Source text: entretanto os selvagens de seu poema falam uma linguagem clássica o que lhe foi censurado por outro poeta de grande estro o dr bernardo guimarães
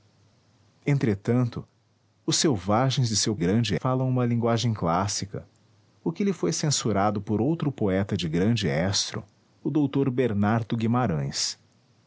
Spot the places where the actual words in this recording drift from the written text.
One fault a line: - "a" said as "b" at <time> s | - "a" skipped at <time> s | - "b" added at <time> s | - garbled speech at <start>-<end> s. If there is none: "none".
- "poema" said as "grande" at 3.4 s